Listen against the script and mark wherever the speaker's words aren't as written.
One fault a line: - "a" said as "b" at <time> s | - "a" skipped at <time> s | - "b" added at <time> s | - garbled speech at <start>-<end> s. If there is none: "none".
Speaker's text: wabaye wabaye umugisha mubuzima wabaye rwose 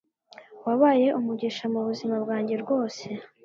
- "wabaye" skipped at 1.1 s
- "wabaye" said as "bwanjye" at 2.2 s